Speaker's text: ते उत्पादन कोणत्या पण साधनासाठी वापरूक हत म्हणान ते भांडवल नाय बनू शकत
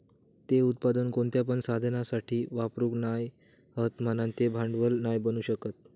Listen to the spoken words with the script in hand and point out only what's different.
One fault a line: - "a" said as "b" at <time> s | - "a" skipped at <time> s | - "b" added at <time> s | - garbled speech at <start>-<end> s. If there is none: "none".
- "नाय" added at 3.0 s